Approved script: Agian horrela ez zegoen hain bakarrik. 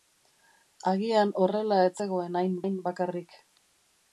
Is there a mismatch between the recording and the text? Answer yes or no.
yes